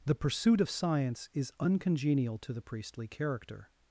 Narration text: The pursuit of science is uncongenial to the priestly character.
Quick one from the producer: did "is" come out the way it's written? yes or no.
yes